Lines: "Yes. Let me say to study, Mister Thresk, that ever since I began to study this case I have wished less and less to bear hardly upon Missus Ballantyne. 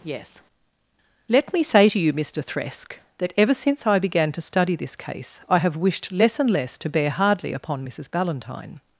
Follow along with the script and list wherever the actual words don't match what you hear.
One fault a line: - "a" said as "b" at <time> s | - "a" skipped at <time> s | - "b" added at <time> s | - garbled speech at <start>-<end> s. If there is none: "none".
- "study" said as "you" at 2.0 s